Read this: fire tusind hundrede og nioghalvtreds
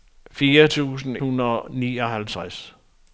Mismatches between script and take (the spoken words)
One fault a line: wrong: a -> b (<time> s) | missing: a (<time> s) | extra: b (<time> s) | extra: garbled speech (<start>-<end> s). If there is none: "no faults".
no faults